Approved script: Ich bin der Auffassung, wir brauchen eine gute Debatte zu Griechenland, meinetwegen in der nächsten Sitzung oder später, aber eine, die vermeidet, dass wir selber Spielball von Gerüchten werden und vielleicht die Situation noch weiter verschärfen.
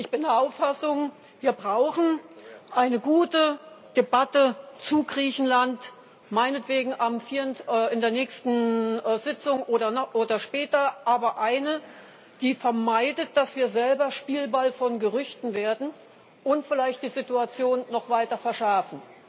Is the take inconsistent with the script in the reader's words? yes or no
no